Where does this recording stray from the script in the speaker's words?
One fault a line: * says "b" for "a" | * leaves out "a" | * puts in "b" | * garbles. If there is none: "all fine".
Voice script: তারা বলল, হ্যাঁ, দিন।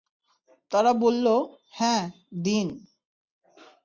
all fine